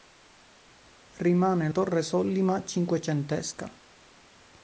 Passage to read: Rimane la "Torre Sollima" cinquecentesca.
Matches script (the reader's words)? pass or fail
fail